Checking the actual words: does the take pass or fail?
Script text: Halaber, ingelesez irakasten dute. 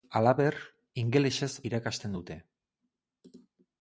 pass